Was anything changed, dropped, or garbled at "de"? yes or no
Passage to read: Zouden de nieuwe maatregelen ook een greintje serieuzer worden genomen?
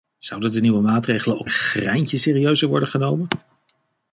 no